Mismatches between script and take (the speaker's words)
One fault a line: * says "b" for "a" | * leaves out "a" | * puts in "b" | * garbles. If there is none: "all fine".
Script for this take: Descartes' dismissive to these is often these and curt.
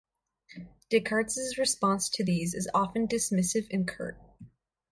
* says "response" for "dismissive"
* says "dismissive" for "these"